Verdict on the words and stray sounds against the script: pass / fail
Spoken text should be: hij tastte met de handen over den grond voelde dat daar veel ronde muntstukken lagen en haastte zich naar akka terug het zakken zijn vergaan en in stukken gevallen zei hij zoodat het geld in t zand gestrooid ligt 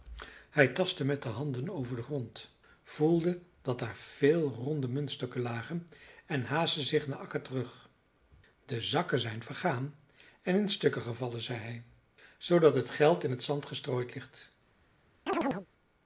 fail